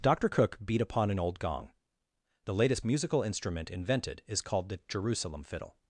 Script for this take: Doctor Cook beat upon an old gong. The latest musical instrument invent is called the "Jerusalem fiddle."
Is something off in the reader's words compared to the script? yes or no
yes